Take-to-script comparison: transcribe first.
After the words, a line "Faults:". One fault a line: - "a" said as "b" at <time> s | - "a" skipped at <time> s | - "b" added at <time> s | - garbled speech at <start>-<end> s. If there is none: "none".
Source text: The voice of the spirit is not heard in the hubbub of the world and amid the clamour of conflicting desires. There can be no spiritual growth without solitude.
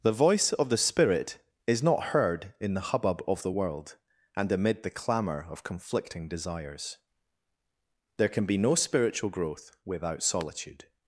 The voice of the spirit is not heard in the hubbub of the world and amid the clamour of conflicting desires. There can be no spiritual growth without solitude.
Faults:
none